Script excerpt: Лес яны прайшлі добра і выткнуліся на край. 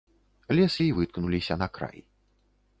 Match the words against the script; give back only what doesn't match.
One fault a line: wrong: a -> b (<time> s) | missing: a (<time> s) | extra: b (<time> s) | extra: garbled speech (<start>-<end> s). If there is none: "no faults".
missing: яны прайшлі добра (0.8 s)